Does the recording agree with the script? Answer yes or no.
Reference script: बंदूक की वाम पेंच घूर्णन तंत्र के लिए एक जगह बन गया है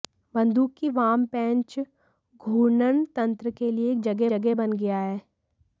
no